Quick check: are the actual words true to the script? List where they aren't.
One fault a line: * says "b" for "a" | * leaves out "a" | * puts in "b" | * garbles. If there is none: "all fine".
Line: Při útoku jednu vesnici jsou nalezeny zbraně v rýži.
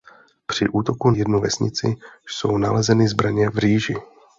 all fine